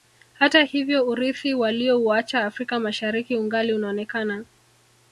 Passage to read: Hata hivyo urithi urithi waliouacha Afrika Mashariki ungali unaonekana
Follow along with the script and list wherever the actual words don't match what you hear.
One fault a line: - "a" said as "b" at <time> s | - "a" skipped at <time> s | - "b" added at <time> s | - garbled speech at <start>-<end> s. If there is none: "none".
- "urithi" skipped at 1.5 s